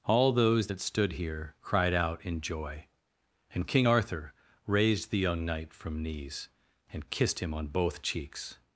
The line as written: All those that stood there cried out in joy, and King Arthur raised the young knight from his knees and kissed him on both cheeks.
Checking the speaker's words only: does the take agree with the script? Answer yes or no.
no